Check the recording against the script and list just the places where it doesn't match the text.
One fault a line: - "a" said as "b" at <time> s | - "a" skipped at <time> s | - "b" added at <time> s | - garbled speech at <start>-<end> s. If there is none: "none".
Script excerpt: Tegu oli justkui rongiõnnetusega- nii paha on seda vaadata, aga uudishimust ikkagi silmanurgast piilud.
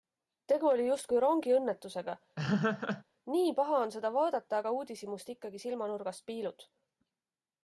none